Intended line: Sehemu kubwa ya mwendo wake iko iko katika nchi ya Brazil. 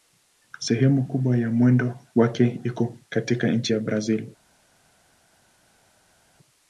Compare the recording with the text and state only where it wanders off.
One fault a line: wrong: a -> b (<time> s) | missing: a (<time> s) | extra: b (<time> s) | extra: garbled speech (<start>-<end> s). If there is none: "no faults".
missing: iko (3.0 s)